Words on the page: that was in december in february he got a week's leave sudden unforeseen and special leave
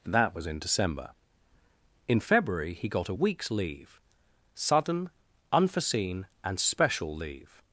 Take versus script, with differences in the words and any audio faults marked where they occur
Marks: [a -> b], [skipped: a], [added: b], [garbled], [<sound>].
that was in december in february he got a week's leave sudden unforeseen and special leave